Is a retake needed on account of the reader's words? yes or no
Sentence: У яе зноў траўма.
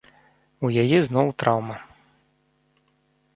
no